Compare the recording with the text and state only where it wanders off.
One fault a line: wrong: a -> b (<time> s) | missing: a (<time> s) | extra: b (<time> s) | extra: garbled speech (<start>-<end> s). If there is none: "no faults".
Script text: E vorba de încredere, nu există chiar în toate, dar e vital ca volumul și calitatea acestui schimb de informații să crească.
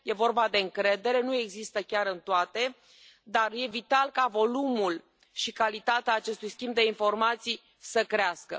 no faults